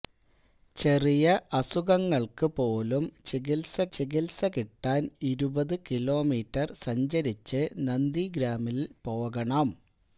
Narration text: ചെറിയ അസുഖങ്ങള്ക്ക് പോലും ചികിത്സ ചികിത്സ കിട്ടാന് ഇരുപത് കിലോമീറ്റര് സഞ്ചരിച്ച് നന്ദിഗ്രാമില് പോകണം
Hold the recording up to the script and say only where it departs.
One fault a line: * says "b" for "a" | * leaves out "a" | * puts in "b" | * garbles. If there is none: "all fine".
all fine